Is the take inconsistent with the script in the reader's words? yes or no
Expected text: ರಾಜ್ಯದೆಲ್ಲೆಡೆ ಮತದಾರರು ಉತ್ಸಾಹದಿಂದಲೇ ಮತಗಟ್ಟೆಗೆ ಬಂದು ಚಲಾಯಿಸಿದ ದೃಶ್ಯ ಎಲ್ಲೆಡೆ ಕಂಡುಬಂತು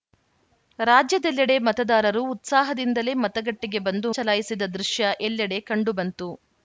no